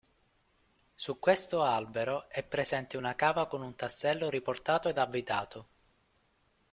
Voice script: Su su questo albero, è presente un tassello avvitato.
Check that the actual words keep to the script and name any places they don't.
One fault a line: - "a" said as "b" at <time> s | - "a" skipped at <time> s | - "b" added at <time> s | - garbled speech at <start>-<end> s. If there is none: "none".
- "su" skipped at 1.2 s
- "una cava con" added at 3.0 s
- "riportato ed" added at 4.3 s